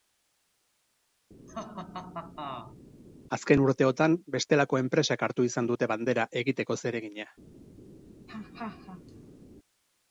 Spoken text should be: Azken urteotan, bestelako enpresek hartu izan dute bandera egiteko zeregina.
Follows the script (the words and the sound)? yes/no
no